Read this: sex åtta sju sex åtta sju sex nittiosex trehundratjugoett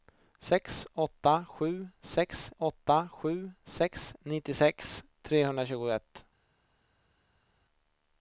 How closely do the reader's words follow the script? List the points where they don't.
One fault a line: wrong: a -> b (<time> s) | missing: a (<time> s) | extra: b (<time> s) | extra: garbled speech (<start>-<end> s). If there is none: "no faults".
no faults